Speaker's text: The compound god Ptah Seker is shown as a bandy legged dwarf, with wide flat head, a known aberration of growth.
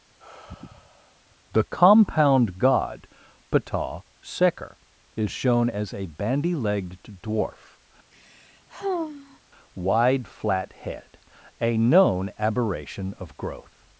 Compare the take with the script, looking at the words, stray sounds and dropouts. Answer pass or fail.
fail